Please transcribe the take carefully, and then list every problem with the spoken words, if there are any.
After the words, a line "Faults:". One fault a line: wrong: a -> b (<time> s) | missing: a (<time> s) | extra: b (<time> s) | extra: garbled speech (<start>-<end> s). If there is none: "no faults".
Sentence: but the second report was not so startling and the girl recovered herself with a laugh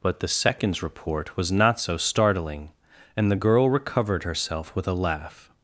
but the seconds report was not so startling and the girl recovered herself with a laugh
Faults:
wrong: second -> seconds (0.3 s)